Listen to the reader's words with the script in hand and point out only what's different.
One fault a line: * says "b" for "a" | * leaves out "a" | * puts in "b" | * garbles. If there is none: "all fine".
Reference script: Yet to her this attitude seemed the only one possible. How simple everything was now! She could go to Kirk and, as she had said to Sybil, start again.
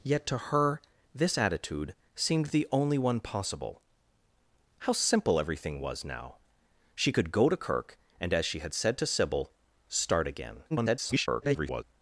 * garbles